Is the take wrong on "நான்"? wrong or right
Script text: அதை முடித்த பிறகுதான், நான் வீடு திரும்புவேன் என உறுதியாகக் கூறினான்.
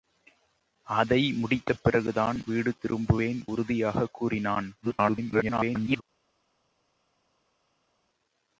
wrong